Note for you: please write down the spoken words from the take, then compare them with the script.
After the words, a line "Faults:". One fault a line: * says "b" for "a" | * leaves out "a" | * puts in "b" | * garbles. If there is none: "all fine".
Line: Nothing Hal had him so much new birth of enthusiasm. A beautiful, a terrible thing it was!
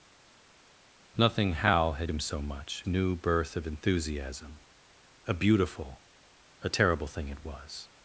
Nothing Hal had him so much new birth of enthusiasm. A beautiful, a terrible thing it was!
Faults:
all fine